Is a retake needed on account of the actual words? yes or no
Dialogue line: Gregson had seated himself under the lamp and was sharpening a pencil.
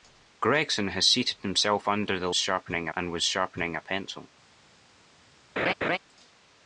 yes